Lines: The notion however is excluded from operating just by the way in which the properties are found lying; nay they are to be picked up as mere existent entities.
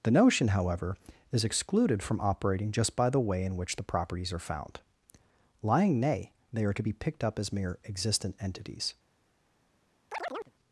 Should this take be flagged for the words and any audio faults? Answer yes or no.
yes